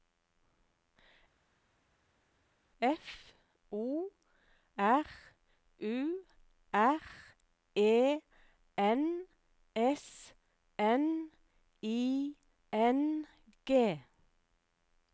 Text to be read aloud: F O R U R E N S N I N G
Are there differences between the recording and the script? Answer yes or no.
no